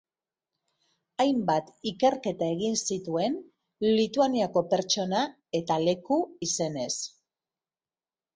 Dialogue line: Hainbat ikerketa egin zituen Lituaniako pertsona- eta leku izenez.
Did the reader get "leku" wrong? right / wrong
right